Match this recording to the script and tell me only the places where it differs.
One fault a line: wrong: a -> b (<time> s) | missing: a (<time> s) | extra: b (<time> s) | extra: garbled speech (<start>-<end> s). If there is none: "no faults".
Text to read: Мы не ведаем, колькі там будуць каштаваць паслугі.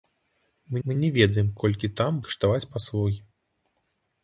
extra: мы (0.9 s)
missing: будуць (2.2 s)